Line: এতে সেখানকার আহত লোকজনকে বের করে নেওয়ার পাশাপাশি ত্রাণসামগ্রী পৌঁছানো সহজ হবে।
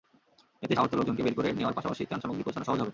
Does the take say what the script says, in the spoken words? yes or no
no